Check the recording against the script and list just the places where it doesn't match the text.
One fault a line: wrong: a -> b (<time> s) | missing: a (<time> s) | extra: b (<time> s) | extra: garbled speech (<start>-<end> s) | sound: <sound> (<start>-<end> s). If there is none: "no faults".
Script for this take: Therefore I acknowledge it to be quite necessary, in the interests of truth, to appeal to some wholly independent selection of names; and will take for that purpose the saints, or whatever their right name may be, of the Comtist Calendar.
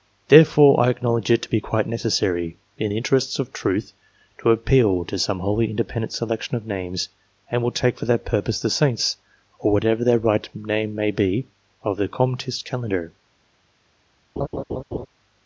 sound: laugh (14.4-15.1 s)